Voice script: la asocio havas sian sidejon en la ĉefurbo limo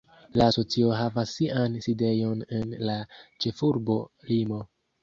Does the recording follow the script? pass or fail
pass